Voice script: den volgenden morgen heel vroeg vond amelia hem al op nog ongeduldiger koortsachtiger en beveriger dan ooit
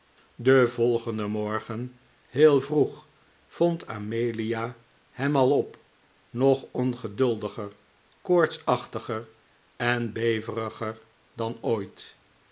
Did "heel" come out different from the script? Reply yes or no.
no